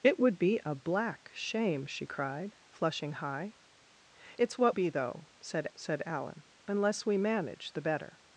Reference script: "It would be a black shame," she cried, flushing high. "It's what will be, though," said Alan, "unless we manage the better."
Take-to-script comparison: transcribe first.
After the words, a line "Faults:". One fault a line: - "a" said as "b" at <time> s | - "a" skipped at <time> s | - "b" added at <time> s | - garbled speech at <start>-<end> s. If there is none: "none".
"It would be a black shame," she cried, flushing high. "It's what be, though," said said Alan, "unless we manage the better."
Faults:
- "will" skipped at 4.8 s
- "said" added at 5.7 s